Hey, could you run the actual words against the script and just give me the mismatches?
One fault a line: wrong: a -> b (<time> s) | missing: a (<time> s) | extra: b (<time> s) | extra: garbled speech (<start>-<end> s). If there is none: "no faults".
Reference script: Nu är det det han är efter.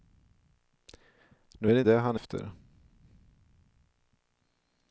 no faults